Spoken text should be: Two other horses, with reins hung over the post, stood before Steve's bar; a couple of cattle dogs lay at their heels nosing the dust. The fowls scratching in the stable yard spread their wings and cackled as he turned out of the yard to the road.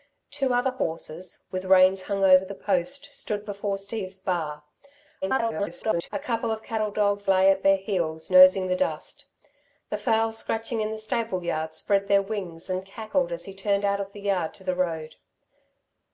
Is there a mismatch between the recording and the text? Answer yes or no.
yes